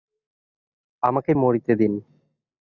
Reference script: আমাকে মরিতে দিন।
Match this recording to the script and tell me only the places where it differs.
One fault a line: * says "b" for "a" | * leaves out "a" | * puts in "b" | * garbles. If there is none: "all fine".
all fine